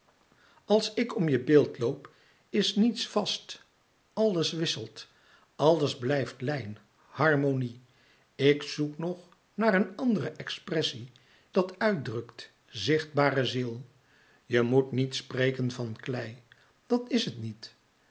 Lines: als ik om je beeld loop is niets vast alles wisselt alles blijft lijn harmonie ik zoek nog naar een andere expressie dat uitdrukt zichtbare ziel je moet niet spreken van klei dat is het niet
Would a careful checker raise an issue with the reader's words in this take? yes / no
no